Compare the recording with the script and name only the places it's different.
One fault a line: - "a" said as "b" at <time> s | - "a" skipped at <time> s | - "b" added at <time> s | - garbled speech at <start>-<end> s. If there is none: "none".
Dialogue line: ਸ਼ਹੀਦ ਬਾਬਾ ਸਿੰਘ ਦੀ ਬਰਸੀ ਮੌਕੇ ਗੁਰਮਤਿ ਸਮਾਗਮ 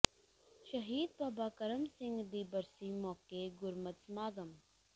- "ਕਰਮ" added at 1.6 s